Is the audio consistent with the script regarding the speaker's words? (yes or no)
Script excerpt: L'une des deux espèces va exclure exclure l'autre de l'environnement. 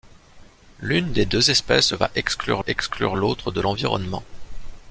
yes